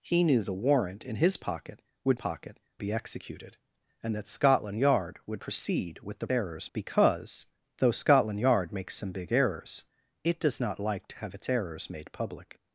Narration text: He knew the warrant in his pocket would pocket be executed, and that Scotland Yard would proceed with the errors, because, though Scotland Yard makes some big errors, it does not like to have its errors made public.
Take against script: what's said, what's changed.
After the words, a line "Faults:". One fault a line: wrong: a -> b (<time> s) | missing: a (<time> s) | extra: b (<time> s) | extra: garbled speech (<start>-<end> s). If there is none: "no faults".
He knew the warrant in his pocket would pocket be executed, and that Scotland Yard would proceed with the errors, because, though Scotland Yard makes some big errors, it does not like to have its errors made public.
Faults:
no faults